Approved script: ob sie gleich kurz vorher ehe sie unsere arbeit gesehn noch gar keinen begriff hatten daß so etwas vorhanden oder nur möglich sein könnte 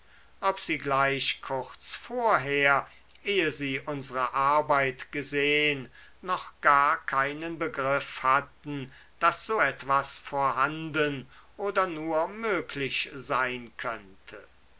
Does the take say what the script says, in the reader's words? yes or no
yes